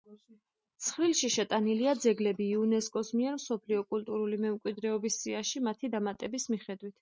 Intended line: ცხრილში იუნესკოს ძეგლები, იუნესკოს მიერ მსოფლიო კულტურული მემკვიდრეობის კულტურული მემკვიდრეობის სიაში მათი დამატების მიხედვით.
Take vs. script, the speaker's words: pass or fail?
fail